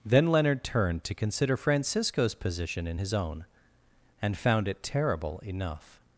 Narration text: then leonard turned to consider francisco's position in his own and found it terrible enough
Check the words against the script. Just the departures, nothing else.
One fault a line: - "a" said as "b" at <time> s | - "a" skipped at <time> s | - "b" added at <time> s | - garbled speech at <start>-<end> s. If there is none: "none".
none